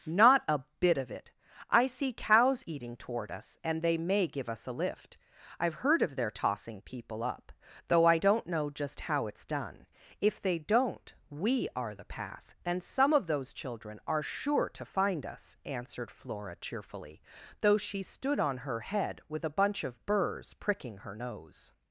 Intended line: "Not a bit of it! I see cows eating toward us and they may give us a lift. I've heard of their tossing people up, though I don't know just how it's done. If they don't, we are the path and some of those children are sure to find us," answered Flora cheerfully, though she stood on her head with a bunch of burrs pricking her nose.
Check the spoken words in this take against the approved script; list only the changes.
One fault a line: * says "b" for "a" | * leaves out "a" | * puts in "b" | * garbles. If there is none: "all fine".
all fine